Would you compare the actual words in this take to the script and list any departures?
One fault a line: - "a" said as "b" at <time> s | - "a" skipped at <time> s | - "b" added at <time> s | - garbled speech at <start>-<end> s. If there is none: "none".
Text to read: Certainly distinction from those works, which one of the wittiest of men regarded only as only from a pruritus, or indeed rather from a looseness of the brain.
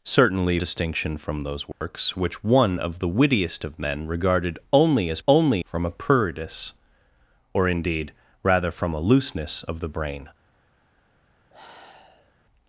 none